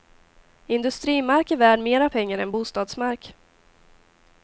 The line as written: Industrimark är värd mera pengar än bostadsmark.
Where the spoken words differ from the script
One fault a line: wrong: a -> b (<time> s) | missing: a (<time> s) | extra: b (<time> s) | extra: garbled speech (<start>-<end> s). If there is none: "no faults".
no faults